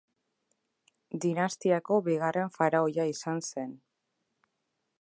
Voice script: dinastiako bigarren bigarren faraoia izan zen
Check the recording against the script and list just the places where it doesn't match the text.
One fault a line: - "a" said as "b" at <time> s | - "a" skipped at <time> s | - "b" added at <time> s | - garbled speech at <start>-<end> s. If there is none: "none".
- "bigarren" skipped at 2.5 s